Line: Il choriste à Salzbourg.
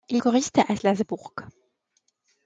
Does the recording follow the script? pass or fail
pass